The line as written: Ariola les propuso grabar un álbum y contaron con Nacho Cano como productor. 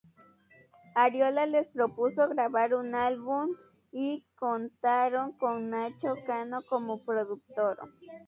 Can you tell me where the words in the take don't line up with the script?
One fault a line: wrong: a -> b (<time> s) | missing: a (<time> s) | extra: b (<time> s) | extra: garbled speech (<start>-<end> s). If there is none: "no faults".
no faults